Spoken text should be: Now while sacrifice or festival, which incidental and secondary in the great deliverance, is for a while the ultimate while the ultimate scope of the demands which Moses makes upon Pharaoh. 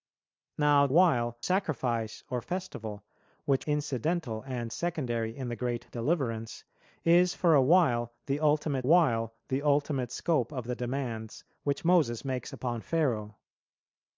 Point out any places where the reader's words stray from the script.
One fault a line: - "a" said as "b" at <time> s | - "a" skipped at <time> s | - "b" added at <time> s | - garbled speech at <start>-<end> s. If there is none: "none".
none